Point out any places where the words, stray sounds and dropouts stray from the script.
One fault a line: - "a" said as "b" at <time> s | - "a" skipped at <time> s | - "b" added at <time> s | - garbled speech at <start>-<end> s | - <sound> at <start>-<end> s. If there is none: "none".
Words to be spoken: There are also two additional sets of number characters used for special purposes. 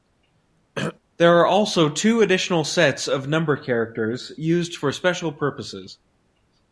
- throat clearing at 0.8-1.0 s